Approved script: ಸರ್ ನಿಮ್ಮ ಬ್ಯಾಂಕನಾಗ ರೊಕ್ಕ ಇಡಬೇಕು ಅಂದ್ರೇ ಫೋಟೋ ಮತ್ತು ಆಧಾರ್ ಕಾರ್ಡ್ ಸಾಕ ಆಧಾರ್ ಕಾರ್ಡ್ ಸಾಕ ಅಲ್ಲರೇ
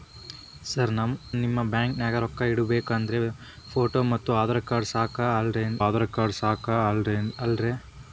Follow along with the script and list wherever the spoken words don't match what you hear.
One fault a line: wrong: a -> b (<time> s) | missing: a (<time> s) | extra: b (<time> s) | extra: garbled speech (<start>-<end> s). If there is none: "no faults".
no faults